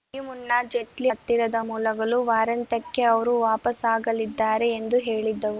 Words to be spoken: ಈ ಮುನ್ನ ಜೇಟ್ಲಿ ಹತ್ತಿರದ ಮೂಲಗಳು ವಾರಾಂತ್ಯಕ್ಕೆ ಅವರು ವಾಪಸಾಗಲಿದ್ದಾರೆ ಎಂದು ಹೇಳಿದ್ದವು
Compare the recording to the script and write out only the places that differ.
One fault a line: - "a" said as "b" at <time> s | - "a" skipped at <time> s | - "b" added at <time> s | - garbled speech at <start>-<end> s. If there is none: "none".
none